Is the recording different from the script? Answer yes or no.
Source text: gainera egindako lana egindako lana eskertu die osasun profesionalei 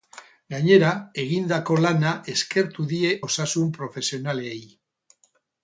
yes